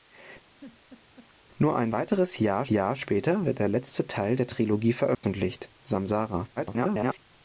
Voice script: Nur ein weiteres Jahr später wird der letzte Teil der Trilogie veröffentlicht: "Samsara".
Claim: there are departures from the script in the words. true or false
true